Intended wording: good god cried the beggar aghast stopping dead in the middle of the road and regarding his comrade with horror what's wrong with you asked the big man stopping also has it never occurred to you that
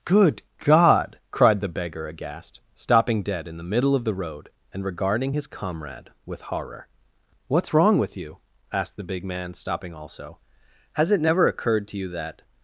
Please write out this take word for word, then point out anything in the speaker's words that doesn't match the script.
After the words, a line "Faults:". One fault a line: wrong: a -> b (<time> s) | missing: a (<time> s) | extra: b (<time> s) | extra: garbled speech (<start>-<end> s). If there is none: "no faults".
good god cried the beggar aghast stopping dead in the middle of the road and regarding his comrade with horror what's wrong with you asked the big man stopping also has it never occurred to you that
Faults:
no faults